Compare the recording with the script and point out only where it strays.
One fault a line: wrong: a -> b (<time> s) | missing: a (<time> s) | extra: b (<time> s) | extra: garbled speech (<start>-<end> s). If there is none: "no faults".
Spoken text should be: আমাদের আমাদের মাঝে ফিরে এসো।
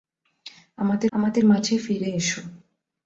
no faults